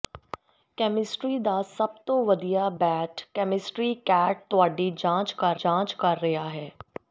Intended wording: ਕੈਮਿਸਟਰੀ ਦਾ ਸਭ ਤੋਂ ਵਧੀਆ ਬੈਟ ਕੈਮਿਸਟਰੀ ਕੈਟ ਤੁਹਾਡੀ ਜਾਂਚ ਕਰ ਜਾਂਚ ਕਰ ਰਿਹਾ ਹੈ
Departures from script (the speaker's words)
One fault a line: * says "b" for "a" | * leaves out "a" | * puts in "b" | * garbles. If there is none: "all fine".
all fine